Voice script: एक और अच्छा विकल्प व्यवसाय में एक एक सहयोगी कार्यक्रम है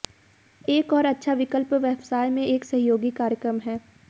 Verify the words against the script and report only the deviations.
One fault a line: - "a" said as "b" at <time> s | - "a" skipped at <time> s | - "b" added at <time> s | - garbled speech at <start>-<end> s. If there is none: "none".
- "एक" skipped at 2.6 s